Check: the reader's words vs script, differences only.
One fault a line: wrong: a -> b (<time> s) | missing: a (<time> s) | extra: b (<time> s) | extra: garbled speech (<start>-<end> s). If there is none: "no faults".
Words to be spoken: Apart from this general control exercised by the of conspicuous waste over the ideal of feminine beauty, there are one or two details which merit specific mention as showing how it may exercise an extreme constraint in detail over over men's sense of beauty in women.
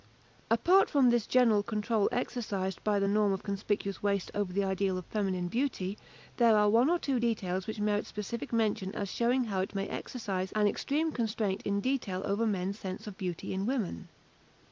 extra: norm (3.1 s)
missing: over (12.4 s)